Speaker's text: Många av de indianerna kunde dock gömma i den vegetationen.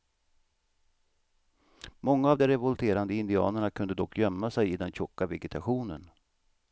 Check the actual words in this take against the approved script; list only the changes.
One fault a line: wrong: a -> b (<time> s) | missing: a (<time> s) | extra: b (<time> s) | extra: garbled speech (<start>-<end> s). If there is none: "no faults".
extra: revolterande (2.5 s)
extra: sig (4.5 s)
extra: tjocka (4.9 s)